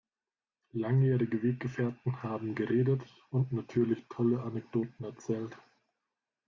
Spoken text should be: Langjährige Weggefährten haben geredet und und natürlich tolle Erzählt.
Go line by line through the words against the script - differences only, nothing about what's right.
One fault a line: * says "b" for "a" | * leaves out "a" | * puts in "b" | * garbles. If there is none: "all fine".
* leaves out "und"
* puts in "Anekdoten"